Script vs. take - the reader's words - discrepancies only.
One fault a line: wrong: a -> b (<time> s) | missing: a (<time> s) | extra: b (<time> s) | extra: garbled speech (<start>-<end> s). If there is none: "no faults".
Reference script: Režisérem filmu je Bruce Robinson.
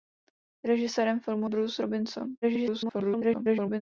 missing: je (1.5 s)
extra: garbled speech (2.4-3.8 s)